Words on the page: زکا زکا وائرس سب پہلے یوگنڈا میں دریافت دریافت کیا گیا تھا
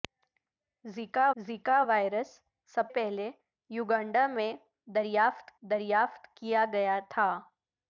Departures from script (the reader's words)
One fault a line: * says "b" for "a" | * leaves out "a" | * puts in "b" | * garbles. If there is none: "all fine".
all fine